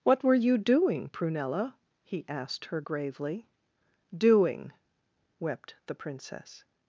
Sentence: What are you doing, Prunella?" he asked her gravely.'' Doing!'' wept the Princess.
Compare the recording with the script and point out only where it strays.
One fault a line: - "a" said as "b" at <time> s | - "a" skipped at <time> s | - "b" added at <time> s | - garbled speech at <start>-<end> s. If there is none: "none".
- "are" said as "were" at 0.2 s